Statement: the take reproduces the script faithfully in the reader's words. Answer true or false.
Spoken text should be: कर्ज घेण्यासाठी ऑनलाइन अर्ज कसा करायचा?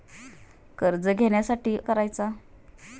false